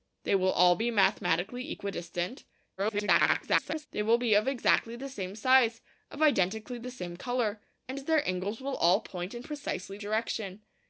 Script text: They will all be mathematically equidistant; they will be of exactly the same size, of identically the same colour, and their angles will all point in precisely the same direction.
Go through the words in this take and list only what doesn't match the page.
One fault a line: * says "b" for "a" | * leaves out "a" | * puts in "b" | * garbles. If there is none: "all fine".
* garbles
* leaves out "the same"